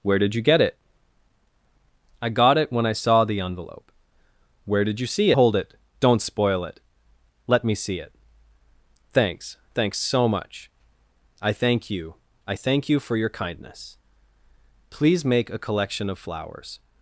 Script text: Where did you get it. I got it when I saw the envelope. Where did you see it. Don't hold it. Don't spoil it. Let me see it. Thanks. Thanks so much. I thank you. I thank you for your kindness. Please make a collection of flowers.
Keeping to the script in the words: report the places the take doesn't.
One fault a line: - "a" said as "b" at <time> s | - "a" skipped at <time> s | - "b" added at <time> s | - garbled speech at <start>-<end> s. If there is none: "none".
- "it Don't" skipped at 5.3 s